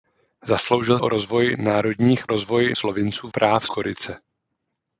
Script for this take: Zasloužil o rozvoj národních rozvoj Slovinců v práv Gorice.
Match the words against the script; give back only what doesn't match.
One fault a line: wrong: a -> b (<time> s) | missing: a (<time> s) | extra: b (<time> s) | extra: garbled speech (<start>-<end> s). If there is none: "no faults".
no faults